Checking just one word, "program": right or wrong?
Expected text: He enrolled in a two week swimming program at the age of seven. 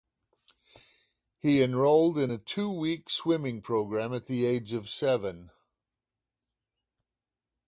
right